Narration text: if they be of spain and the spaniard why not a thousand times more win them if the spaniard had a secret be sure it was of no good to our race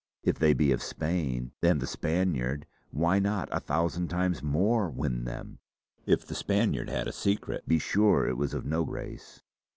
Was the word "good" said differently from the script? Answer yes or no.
yes